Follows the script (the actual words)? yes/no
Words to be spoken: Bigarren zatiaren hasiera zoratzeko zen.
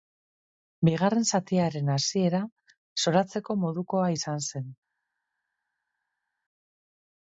no